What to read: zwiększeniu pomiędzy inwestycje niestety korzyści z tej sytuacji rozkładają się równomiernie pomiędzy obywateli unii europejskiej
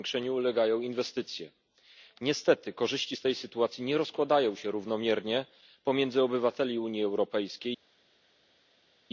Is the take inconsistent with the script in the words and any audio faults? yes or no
yes